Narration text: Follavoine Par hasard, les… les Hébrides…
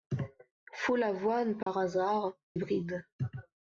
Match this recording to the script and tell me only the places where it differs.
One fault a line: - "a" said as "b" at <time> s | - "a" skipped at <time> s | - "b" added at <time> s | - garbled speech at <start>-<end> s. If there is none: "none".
- "les les" skipped at 2.4 s